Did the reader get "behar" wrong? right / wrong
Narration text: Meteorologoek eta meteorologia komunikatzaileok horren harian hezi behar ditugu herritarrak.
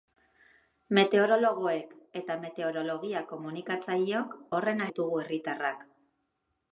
wrong